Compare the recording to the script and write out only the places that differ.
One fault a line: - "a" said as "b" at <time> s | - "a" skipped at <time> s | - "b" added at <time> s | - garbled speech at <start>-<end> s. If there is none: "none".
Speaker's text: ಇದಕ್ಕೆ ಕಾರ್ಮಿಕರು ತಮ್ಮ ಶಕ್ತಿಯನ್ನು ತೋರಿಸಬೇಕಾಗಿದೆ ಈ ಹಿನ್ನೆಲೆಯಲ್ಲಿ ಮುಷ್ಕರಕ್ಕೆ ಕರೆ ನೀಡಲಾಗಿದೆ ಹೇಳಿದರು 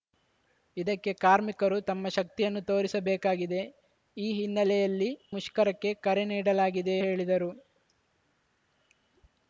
none